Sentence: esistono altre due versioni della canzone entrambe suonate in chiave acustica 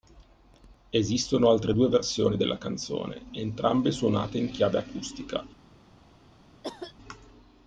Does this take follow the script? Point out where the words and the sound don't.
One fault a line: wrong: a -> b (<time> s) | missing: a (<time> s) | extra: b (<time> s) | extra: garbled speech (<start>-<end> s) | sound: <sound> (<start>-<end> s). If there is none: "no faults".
sound: cough (6.6-6.9 s)